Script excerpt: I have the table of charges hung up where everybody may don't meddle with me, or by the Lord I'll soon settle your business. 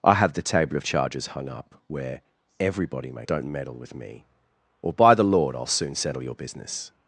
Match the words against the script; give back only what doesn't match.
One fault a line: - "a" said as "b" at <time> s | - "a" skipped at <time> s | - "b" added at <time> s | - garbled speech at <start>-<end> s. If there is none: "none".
none